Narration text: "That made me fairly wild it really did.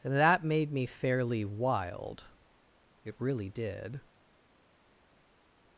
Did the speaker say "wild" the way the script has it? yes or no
yes